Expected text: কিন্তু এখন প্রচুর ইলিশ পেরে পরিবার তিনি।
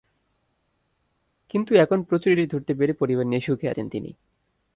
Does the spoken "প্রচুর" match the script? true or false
true